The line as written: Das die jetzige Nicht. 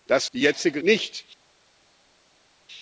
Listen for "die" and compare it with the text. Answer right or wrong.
right